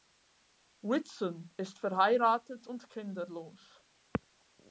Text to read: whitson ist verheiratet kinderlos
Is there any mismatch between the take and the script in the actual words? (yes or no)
yes